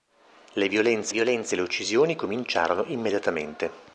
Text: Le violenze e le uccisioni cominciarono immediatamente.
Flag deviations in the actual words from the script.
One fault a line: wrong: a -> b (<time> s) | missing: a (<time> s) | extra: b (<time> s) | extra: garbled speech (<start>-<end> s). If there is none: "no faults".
extra: violenze (1.1 s)